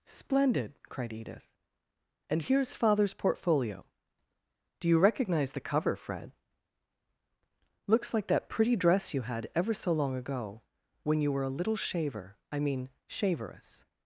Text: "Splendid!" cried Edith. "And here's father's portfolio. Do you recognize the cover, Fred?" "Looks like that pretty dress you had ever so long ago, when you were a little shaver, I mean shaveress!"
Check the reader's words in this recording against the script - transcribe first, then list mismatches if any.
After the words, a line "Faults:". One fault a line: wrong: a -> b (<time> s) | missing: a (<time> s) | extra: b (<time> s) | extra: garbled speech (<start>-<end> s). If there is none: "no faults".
"Splendid!" cried Edith. "And here's father's portfolio. Do you recognize the cover, Fred?" "Looks like that pretty dress you had ever so long ago, when you were a little shaver, I mean shaveress!"
Faults:
no faults